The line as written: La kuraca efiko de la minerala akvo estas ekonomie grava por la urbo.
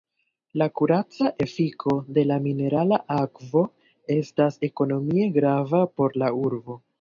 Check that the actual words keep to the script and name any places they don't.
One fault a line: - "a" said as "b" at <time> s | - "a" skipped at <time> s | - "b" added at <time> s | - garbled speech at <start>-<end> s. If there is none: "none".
none